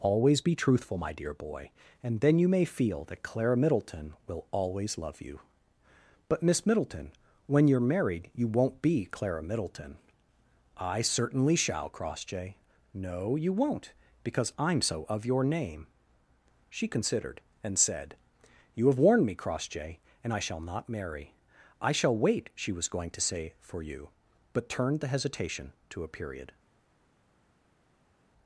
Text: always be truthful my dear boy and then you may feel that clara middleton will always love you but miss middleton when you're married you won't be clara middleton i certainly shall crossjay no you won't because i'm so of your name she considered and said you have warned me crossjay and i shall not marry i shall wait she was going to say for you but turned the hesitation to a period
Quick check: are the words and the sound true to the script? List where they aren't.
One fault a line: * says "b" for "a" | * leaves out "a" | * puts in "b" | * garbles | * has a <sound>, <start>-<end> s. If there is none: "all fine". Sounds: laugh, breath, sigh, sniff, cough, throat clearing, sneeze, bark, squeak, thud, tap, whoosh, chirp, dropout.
all fine